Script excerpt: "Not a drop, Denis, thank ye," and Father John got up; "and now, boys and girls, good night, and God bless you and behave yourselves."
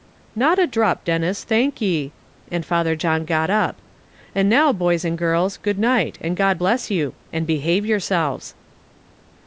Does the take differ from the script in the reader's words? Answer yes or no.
no